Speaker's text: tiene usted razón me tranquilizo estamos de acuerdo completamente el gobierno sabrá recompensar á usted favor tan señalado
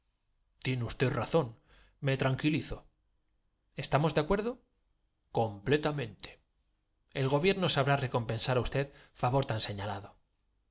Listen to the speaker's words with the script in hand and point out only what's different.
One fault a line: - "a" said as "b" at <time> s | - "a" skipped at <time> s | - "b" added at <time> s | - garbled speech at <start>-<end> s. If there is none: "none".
none